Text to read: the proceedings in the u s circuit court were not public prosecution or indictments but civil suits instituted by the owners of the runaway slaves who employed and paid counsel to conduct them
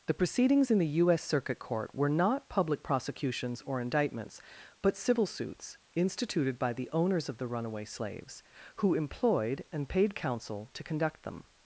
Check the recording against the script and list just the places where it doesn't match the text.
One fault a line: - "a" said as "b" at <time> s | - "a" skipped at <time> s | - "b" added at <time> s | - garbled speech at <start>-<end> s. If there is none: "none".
- "prosecution" said as "prosecutions" at 2.8 s